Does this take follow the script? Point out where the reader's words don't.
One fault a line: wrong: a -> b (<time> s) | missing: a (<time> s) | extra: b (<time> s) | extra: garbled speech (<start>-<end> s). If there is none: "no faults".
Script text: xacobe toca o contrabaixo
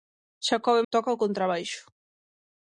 no faults